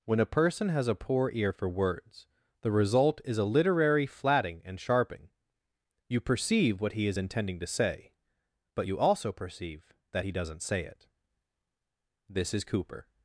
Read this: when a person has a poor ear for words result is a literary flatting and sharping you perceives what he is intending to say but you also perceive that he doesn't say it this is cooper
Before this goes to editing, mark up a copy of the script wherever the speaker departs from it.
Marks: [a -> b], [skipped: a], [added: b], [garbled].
when a person has a poor ear for words [added: the] result is a literary flatting and sharping you [perceives -> perceive] what he is intending to say but you also perceive that he doesn't say it this is cooper